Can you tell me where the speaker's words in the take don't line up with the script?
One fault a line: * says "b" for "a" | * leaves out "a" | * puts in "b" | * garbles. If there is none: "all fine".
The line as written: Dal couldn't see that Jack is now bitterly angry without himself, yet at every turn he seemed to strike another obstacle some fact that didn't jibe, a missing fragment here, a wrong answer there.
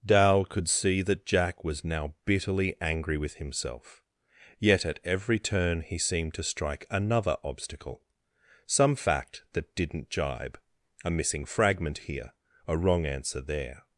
* says "could" for "couldn't"
* says "was" for "is"
* says "with" for "without"